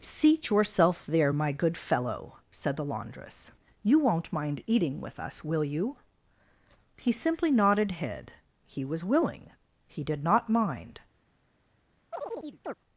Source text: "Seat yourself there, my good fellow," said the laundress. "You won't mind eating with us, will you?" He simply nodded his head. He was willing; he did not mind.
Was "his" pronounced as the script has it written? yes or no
no